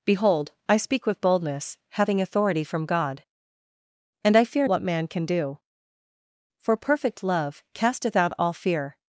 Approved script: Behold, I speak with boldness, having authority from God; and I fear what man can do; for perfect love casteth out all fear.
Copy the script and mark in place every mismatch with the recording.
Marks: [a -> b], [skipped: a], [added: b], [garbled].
Behold, I speak with boldness, having authority from God; and I fear what man can do; for perfect love casteth out all fear.